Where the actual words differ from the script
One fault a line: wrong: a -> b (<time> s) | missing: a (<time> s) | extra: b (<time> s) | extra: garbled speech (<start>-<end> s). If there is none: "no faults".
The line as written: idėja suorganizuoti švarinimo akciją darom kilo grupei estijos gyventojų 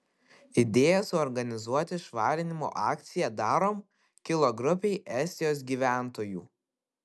no faults